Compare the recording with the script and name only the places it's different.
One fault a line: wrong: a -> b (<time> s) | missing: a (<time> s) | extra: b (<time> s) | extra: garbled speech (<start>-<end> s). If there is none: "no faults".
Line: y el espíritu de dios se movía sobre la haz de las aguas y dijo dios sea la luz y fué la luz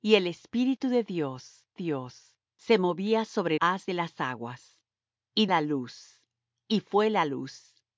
extra: dios (1.7 s)
missing: la (3.6 s)
missing: dijo dios sea (5.5 s)